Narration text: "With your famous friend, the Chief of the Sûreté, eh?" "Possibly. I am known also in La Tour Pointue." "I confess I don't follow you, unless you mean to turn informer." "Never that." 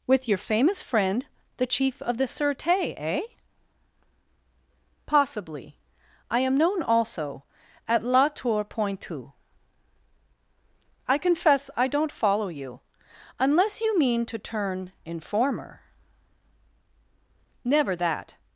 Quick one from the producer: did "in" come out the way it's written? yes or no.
no